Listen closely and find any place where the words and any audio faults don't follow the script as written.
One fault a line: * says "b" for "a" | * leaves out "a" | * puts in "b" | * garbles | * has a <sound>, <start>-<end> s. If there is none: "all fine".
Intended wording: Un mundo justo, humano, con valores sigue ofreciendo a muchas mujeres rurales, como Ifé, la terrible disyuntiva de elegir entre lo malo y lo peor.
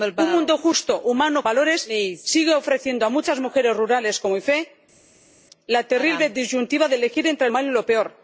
* leaves out "con"
* leaves out "lo"